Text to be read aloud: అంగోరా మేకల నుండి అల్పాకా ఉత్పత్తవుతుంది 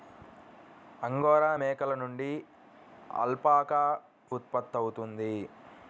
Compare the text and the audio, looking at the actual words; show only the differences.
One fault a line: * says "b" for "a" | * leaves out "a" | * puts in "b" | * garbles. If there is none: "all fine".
all fine